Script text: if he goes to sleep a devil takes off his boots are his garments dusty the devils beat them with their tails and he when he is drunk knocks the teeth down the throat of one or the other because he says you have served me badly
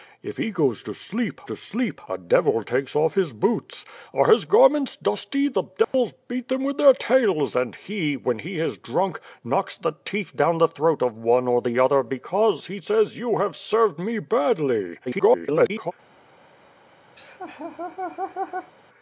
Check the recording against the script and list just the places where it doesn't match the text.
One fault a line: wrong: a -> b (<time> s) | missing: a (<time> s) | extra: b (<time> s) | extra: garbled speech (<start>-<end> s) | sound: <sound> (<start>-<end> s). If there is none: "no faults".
extra: to sleep (1.4 s)
sound: dropout (5.8-5.9 s)
extra: garbled speech (15.1-15.9 s)
sound: laugh (17.2-18.7 s)